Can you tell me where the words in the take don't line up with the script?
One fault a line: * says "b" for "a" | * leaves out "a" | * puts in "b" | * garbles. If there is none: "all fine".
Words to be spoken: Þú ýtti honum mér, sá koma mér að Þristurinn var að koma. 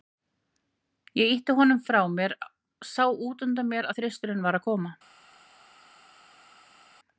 * says "Ég" for "Þú"
* puts in "frá"
* says "útundan" for "koma"